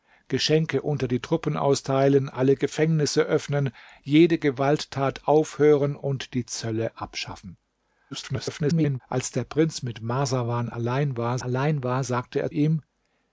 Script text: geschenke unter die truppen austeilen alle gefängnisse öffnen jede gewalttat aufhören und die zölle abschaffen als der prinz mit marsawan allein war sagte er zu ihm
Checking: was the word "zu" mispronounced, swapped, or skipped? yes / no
yes